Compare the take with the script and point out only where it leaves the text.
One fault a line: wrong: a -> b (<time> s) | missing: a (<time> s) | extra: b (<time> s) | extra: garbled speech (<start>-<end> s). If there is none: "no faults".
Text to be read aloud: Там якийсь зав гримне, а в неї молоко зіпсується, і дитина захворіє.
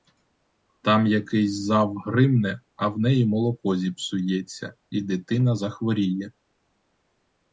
no faults